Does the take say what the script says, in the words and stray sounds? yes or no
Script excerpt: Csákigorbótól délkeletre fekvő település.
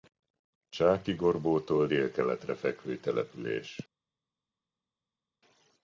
yes